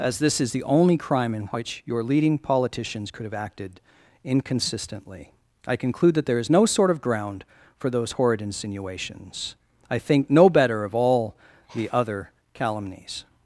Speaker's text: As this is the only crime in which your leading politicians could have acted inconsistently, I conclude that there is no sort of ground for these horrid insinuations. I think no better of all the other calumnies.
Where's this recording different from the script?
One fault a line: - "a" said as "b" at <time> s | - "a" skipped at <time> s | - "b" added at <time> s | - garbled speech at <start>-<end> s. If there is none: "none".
- "these" said as "those" at 7.9 s